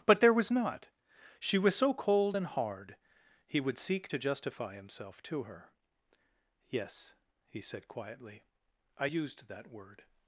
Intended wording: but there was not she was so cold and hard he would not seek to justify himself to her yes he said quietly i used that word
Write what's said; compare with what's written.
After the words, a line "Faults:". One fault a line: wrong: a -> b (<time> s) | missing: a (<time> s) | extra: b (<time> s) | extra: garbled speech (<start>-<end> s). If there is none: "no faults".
but there was not she was so cold and hard he would seek to justify himself to her yes he said quietly i used that word
Faults:
missing: not (3.8 s)